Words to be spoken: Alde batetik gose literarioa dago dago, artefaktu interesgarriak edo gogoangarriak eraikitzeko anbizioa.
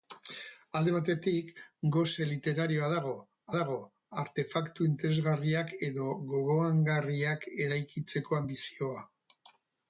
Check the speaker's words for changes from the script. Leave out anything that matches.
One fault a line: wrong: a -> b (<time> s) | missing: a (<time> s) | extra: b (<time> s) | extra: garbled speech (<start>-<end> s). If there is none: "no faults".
no faults